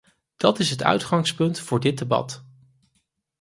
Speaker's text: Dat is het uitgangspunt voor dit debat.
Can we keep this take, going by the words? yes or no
yes